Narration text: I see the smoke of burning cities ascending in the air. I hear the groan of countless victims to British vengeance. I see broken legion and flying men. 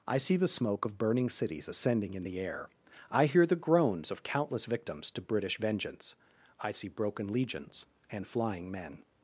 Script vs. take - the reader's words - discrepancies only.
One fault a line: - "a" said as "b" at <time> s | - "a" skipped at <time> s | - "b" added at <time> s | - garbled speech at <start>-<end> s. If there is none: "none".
- "groan" said as "groans" at 3.6 s
- "legion" said as "legions" at 7.3 s